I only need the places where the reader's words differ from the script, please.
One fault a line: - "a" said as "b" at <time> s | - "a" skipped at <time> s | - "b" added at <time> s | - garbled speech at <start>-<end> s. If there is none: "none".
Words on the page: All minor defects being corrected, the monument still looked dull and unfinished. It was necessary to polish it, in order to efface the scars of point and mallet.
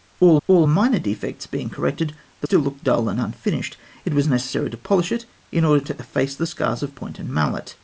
- "all" added at 0.5 s
- "monument" skipped at 2.5 s